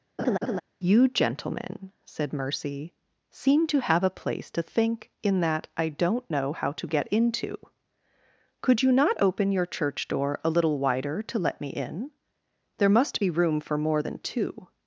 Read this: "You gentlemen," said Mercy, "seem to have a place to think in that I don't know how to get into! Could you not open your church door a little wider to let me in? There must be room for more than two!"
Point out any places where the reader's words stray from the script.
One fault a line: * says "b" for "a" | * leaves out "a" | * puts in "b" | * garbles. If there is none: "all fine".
all fine